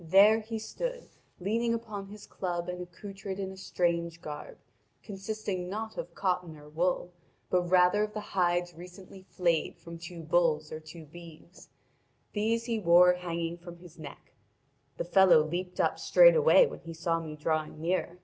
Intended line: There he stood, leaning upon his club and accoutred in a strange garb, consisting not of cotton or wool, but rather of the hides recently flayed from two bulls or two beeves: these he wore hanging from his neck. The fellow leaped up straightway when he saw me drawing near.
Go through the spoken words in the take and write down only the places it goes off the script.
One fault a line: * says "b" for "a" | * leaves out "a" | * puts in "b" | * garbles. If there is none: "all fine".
all fine